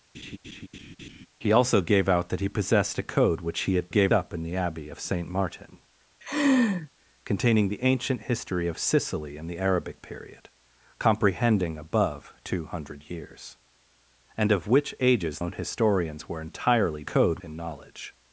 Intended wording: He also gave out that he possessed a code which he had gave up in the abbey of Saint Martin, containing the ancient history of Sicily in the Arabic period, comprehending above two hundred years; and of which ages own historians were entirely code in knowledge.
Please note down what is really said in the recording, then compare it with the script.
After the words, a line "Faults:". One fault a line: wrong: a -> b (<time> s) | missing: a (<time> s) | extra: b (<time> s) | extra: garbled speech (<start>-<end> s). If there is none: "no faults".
He also gave out that he possessed a code which he had gave up in the abbey of Saint Martin, containing the ancient history of Sicily in the Arabic period, comprehending above two hundred years; and of which ages own historians were entirely code in knowledge.
Faults:
no faults